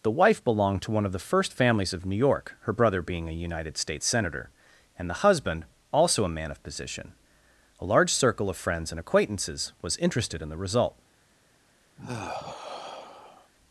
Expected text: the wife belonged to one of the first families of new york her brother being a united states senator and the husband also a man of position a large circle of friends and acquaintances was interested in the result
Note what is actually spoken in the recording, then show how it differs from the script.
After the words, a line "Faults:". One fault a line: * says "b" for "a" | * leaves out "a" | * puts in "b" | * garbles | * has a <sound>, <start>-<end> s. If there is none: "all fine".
the wife belonged to one of the first families of new york her brother being a united states senator and the husband also a man of position a large circle of friends and acquaintances was interested in the result
Faults:
* has a sigh, 12.0-13.5 s